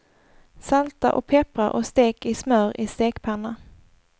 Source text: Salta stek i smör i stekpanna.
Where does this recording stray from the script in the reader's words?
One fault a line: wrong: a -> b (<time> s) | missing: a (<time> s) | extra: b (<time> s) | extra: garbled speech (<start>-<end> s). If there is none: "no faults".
extra: och peppra och (1.1 s)